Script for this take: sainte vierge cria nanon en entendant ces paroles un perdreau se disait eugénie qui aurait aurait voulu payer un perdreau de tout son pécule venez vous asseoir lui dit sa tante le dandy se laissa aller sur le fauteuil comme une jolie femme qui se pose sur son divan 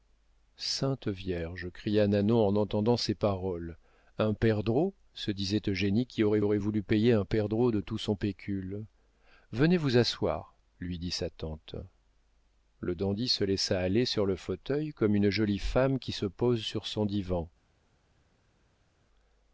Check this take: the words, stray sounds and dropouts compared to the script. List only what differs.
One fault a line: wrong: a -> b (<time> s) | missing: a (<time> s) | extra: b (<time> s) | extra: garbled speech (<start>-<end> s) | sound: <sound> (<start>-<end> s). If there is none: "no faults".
no faults